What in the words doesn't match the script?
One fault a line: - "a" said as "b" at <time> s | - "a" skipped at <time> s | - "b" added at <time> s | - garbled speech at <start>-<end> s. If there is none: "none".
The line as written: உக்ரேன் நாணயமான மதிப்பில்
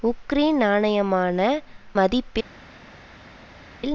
none